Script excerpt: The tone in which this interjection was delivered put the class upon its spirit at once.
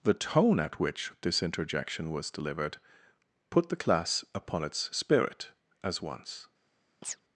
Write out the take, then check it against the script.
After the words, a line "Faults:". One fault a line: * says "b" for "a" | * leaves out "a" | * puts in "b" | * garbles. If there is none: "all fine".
The tone at which this interjection was delivered put the class upon its spirit as once.
Faults:
* says "at" for "in"
* says "as" for "at"